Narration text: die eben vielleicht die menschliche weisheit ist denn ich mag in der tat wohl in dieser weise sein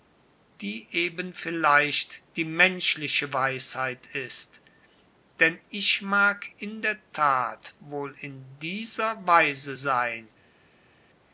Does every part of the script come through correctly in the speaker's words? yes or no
yes